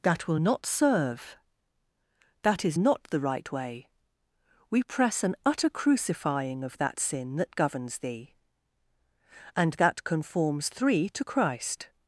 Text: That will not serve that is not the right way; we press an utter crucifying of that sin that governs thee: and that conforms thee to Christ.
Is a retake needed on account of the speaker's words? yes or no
yes